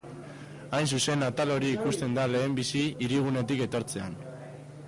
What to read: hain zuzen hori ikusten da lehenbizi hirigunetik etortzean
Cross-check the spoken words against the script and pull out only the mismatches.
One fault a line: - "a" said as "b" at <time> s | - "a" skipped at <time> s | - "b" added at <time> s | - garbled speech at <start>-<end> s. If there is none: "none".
- "atal" added at 1.3 s